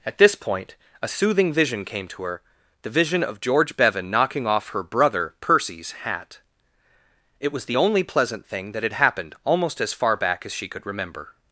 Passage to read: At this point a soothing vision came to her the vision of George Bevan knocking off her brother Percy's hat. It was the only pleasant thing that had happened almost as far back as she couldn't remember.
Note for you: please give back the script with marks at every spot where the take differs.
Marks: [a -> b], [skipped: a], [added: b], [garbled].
At this point a soothing vision came to her the vision of George Bevan knocking off her brother Percy's hat. It was the only pleasant thing that had happened almost as far back as she [couldn't -> could] remember.